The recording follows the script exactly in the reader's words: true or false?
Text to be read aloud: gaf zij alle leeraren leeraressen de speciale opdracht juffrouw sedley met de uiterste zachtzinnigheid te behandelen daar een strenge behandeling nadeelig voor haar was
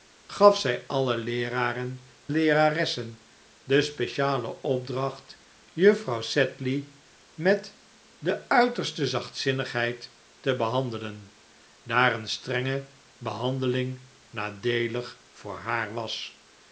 true